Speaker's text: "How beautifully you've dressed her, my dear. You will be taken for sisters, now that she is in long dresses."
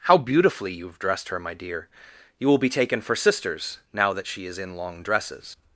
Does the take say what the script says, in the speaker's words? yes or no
yes